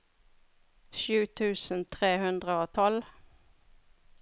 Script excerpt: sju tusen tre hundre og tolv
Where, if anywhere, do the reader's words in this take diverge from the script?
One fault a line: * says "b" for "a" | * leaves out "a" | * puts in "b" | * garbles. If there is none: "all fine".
all fine